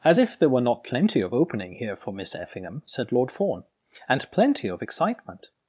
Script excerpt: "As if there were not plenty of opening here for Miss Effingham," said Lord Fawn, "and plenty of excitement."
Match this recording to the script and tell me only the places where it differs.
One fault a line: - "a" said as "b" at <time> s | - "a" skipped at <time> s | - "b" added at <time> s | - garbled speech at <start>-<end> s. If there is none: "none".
none